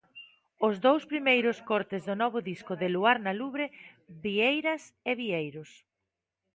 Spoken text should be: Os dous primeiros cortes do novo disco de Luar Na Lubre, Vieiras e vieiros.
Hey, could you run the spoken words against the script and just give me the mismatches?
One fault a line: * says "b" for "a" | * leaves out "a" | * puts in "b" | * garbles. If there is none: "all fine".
all fine